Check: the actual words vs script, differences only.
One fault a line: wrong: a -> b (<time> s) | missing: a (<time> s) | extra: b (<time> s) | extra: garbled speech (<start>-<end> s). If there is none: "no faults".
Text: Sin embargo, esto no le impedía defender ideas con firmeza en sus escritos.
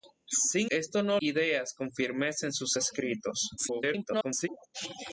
missing: embargo (0.7 s)
missing: le impedía defender (1.2 s)
extra: garbled speech (3.6-4.5 s)